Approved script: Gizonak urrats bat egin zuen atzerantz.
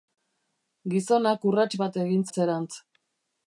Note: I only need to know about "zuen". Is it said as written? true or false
false